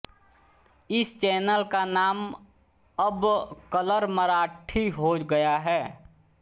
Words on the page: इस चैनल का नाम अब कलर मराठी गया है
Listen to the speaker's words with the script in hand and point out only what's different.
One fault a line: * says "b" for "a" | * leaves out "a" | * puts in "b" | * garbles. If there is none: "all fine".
* puts in "हो"